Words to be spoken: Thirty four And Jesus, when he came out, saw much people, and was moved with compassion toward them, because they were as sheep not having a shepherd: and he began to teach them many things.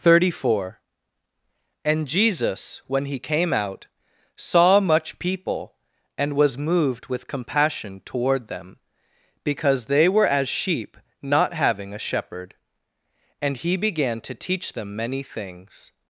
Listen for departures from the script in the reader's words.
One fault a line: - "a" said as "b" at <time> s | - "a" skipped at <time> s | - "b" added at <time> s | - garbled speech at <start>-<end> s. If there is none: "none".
none